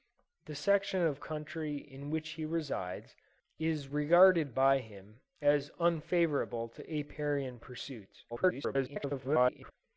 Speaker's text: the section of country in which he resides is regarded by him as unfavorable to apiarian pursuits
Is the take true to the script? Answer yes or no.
no